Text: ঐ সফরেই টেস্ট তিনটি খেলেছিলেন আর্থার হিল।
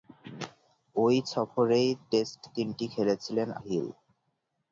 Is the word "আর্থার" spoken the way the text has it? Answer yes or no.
no